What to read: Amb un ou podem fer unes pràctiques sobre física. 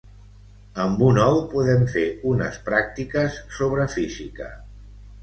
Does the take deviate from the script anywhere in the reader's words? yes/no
no